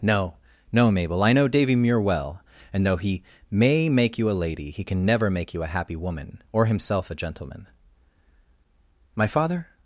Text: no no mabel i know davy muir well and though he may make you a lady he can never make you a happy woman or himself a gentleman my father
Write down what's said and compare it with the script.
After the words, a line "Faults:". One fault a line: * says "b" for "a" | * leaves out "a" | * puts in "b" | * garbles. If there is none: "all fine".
no no mabel i know davy muir well and though he may make you a lady he can never make you a happy woman or himself a gentleman my father
Faults:
all fine